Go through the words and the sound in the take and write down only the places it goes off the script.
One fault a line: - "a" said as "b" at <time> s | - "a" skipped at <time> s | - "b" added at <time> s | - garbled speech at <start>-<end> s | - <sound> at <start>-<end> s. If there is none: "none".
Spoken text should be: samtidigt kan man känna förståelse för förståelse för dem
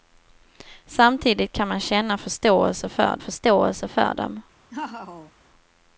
- laugh at 4.7-5.3 s